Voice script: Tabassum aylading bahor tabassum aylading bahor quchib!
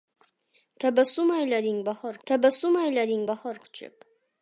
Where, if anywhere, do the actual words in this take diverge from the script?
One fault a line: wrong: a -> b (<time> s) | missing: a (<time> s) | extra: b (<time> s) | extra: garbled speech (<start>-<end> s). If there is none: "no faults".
no faults